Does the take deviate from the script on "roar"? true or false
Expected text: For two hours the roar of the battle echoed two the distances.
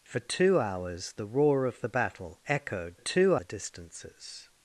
false